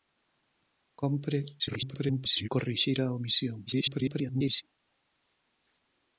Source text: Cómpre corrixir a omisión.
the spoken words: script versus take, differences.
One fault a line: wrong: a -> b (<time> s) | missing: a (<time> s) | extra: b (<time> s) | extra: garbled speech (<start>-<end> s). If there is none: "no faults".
extra: garbled speech (1.6-2.5 s)
extra: garbled speech (3.7-4.6 s)